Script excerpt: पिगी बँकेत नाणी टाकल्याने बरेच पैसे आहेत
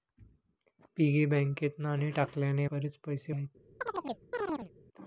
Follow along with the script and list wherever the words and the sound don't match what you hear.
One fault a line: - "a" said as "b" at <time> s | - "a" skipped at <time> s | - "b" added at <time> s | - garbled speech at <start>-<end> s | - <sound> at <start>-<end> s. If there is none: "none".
- chirp at 3.8-4.7 s